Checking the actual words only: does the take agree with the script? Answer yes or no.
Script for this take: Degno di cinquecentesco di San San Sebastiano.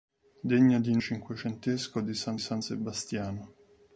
yes